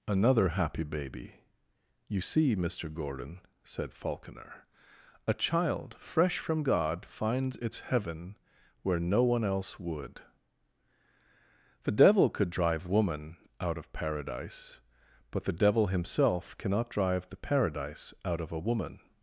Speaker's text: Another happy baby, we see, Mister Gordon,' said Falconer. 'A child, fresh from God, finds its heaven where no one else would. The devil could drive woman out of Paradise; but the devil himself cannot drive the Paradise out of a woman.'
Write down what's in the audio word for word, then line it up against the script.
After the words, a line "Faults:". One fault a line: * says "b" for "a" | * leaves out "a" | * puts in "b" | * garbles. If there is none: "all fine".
Another happy baby, you see, Mister Gordon,' said Falconer. 'A child, fresh from God, finds its heaven where no one else would. The devil could drive woman out of Paradise; but the devil himself cannot drive the Paradise out of a woman.'
Faults:
* says "you" for "we"